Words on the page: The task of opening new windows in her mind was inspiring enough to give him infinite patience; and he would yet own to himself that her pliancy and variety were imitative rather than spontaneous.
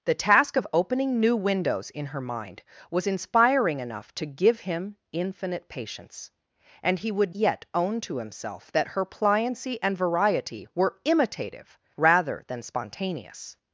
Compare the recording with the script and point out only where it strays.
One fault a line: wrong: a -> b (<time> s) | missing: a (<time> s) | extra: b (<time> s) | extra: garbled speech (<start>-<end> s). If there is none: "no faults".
no faults